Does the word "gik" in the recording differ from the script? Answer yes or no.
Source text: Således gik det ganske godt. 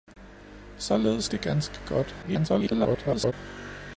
yes